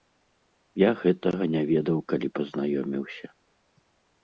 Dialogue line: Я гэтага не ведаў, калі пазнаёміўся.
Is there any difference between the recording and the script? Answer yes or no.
no